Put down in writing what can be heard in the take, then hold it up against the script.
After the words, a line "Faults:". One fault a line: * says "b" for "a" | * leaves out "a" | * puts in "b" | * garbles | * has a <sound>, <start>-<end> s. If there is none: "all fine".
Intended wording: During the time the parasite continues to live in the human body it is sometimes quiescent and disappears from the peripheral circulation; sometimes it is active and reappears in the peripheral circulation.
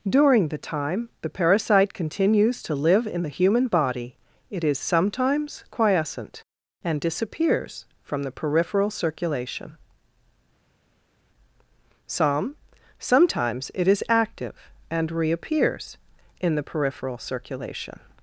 During the time the parasite continues to live in the human body it is sometimes quiescent and disappears from the peripheral circulation; some sometimes it is active and reappears in the peripheral circulation.
Faults:
* puts in "some"